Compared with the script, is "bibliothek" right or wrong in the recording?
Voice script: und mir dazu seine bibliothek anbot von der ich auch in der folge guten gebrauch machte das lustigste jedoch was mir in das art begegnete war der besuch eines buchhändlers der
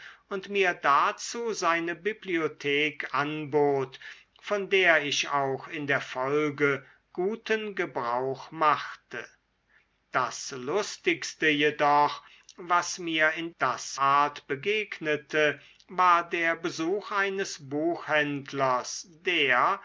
right